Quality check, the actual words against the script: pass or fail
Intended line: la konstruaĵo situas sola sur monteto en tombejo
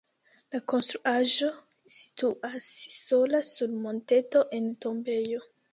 pass